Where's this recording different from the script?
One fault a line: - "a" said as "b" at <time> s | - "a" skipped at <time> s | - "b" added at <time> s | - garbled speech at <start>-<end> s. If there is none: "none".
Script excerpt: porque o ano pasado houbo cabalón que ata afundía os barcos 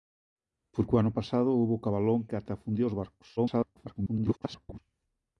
- garbled speech at 3.4-4.8 s